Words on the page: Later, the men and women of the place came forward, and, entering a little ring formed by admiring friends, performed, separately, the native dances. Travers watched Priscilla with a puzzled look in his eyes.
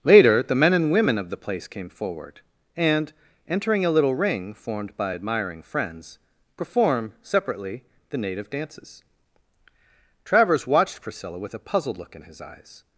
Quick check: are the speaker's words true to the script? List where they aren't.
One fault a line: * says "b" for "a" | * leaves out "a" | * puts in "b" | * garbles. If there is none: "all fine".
* says "perform" for "performed"